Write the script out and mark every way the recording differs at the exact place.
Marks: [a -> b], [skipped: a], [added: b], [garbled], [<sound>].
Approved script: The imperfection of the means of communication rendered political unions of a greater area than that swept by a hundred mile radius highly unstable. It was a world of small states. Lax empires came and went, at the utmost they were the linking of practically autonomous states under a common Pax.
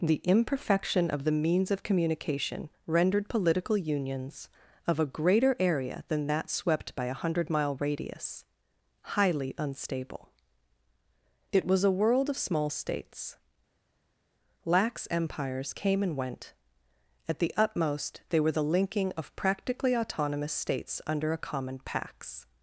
The imperfection of the means of communication rendered political unions of a greater area than that swept by a hundred mile radius highly unstable. It was a world of small states. Lax empires came and went, at the utmost they were the linking of practically autonomous states under a common Pax.